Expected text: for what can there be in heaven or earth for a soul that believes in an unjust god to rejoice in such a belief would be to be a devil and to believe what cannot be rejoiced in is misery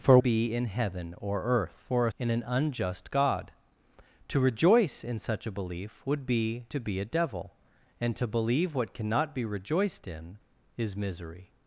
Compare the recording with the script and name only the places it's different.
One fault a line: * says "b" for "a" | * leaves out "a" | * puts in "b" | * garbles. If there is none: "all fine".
* leaves out "what can there"
* leaves out "soul that believes"